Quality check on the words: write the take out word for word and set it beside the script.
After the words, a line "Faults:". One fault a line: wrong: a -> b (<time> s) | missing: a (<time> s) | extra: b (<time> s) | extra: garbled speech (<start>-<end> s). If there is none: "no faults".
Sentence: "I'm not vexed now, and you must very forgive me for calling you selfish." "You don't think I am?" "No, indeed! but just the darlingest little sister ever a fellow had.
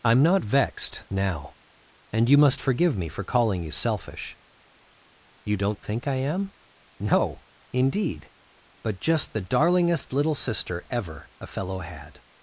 "I'm not vexed now, and you must forgive me for calling you selfish." "You don't think I am?" "No, indeed! but just the darlingest little sister ever a fellow had.
Faults:
missing: very (2.6 s)